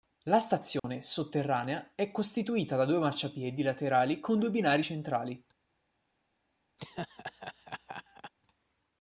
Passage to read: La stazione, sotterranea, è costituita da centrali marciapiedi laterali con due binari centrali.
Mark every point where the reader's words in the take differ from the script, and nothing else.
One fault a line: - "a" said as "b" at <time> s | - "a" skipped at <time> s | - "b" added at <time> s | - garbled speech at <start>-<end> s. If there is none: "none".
- "centrali" said as "due" at 2.9 s